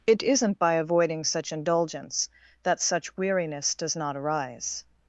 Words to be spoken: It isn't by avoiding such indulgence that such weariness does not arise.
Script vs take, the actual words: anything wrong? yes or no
no